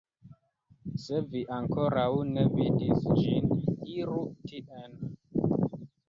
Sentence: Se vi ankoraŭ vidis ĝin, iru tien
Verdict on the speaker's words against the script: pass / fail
fail